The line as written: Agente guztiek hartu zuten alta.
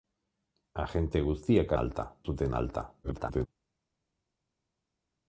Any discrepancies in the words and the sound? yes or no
yes